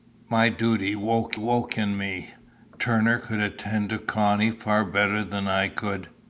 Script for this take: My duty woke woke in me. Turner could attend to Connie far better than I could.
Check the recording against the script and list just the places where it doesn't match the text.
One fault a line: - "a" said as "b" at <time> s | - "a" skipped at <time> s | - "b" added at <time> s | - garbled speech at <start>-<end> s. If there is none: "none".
none